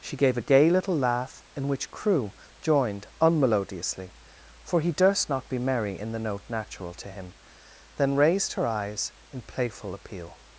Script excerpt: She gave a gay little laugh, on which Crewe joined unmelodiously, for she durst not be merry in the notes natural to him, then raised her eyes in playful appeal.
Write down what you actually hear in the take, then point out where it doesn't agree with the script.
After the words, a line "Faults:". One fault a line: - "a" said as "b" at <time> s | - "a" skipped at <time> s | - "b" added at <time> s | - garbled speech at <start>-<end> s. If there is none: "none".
She gave a gay little laugh, in which Crewe joined unmelodiously, for he durst not be merry in the note natural to him, then raised her eyes in playful appeal.
Faults:
- "on" said as "in" at 1.6 s
- "she" said as "he" at 4.8 s
- "notes" said as "note" at 6.2 s